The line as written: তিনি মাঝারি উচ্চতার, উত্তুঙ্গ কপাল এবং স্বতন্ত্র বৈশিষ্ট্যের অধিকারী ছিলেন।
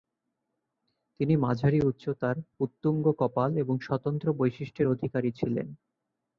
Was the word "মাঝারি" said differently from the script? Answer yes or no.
no